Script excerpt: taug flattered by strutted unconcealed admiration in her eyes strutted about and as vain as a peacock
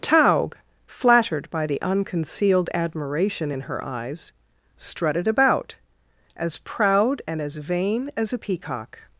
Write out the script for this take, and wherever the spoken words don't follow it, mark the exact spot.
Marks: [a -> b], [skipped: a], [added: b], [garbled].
taug flattered by [strutted -> the] unconcealed admiration in her eyes strutted about [added: as proud] and as vain as a peacock